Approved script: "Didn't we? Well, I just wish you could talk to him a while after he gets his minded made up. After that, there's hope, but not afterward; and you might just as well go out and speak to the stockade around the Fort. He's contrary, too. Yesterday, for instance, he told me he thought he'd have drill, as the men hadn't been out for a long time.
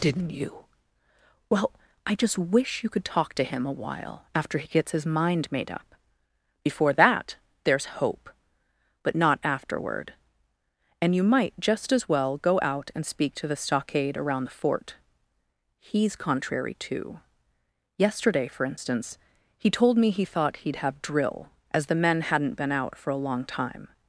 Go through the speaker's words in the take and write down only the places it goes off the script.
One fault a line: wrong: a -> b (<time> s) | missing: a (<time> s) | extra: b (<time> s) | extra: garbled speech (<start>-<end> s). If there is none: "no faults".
wrong: we -> you (0.3 s)
wrong: minded -> mind (5.0 s)
wrong: After -> Before (6.6 s)